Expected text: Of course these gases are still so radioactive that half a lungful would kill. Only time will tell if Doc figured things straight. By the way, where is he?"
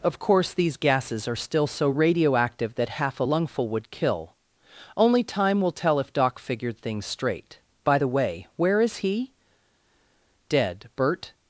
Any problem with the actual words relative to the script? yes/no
yes